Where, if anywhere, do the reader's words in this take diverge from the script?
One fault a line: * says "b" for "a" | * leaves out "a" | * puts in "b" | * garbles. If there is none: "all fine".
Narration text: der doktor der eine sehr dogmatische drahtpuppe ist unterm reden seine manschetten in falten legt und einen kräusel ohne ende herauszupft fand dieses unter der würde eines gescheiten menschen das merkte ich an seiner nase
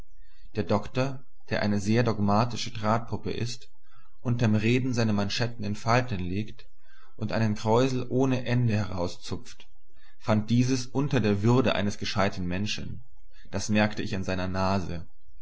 all fine